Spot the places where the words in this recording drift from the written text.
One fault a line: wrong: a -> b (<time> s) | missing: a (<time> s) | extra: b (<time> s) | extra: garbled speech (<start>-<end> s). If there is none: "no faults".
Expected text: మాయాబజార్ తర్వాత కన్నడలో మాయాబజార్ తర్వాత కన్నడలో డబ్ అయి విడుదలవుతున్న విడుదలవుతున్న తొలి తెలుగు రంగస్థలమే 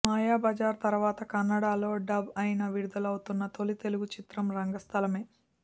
missing: మాయాబజార్ తర్వాత కన్నడలో (1.9 s)
missing: విడుదలవుతున్న (3.4 s)
extra: చిత్రం (4.1 s)